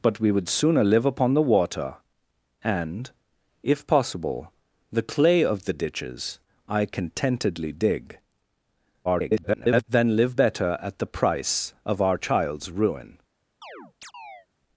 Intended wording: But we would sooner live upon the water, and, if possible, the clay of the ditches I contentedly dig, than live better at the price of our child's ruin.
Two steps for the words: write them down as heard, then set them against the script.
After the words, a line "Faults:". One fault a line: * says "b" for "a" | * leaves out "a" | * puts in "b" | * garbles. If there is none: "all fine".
But we would sooner live upon the water, and, if possible, the clay of the ditches I contentedly dig, [garbled] than live better at the price of our child's ruin.
Faults:
* garbles